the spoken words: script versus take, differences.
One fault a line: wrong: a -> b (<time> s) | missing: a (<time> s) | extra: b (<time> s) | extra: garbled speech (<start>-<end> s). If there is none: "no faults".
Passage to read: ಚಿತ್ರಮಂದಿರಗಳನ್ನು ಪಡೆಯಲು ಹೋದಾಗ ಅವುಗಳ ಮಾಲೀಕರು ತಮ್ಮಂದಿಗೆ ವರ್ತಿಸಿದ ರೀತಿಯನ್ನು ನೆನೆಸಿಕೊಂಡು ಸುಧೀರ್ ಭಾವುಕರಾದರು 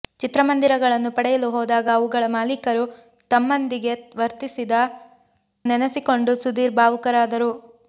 missing: ರೀತಿಯನ್ನು (4.8 s)